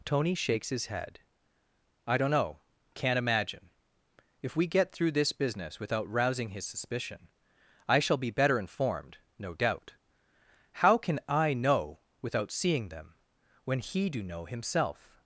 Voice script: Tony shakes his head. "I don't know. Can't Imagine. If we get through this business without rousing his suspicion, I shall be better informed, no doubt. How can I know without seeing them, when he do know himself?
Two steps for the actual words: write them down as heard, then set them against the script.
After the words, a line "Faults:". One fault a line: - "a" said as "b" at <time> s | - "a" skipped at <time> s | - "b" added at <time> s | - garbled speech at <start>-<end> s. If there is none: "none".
Tony shakes his head. "I don't know. Can't Imagine. If we get through this business without rousing his suspicion, I shall be better informed, no doubt. How can I know without seeing them, when he do know himself?
Faults:
none